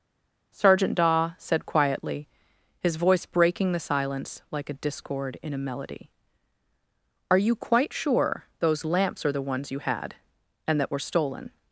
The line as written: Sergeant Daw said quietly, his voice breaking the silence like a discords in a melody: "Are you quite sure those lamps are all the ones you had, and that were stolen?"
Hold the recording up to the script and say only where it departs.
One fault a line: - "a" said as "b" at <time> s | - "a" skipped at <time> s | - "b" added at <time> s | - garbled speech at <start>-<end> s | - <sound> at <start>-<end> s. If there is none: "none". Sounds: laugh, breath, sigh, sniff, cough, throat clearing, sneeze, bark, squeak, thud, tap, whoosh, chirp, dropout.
- "discords" said as "discord" at 4.7 s
- "all" skipped at 9.3 s